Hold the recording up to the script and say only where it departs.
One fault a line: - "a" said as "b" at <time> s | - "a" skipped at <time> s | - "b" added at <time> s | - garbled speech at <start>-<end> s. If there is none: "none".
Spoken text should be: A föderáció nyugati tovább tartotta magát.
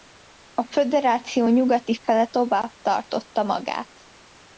- "fele" added at 2.0 s